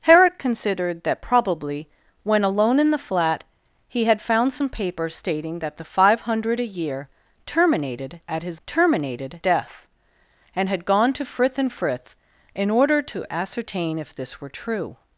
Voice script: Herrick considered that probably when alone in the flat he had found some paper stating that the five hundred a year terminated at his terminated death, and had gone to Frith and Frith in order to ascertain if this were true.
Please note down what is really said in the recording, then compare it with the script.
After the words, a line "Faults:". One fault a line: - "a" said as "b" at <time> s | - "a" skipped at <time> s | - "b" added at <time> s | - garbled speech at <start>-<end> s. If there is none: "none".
Herrick considered that probably when alone in the flat he had found some paper stating that the five hundred a year terminated at his terminated death, and had gone to Frith and Frith in order to ascertain if this were true.
Faults:
none